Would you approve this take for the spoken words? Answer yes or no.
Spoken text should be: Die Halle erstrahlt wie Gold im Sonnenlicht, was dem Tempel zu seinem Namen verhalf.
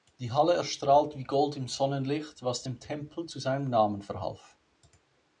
yes